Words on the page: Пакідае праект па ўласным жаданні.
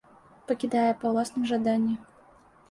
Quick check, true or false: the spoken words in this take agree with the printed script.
false